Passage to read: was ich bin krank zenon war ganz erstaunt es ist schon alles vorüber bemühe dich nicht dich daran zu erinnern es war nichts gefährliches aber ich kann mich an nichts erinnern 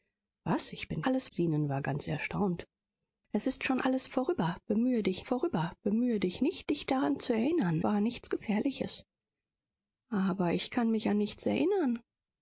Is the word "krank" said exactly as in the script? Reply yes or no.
no